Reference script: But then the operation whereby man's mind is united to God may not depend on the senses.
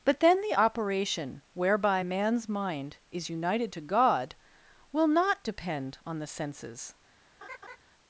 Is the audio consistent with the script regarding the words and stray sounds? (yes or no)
no